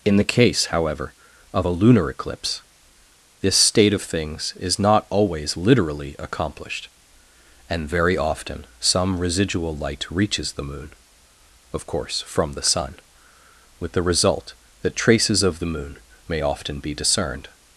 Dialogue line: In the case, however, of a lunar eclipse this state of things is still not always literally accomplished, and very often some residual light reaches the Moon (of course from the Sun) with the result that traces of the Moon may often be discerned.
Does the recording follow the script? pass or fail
fail